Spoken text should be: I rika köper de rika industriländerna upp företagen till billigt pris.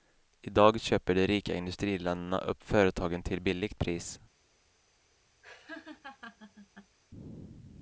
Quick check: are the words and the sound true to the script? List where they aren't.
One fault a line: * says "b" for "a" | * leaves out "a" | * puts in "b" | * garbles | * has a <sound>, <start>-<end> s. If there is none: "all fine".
* says "dag" for "rika"
* has a laugh, 5.4-7.0 s